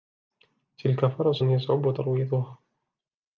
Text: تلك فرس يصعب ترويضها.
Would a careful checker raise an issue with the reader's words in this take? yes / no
no